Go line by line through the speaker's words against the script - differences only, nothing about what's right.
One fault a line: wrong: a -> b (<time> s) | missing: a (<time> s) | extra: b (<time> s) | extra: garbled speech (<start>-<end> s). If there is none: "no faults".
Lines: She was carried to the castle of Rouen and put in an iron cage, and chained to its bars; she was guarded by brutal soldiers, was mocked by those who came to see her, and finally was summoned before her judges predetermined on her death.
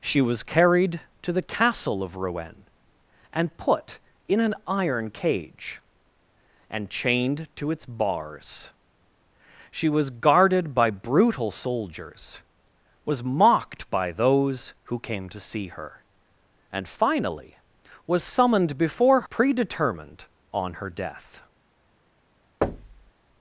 missing: her judges (19.3 s)